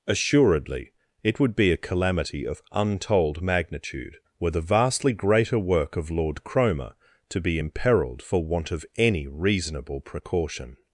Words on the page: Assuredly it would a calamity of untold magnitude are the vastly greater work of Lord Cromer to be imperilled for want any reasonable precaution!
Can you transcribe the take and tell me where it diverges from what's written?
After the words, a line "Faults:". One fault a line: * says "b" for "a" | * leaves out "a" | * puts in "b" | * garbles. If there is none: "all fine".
Assuredly it would be a calamity of untold magnitude were the vastly greater work of Lord Cromer to be imperilled for want of any reasonable precaution!
Faults:
* puts in "be"
* says "were" for "are"
* puts in "of"